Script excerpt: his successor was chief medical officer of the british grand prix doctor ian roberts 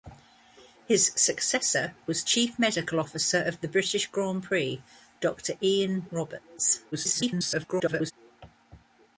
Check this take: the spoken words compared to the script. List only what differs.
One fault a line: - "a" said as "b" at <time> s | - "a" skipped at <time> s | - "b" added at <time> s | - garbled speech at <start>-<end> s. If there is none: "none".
- garbled speech at 6.9-8.1 s